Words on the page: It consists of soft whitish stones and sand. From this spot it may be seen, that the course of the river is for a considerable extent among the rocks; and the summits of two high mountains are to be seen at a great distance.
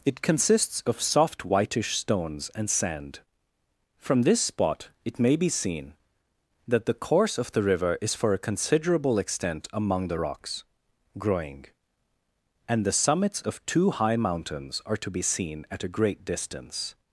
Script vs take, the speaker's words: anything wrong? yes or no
yes